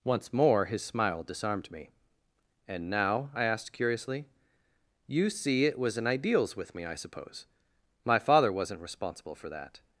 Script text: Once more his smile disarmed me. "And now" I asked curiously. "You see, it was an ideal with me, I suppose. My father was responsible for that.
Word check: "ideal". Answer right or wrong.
wrong